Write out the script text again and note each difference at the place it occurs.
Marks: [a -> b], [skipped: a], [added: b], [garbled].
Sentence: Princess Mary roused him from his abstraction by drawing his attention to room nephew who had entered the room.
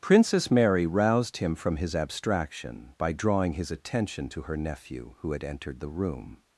Princess Mary roused him from his abstraction by drawing his attention to [room -> her] nephew who had entered the room.